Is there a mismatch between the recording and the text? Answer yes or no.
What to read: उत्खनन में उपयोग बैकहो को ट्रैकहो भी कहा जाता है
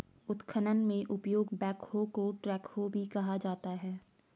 no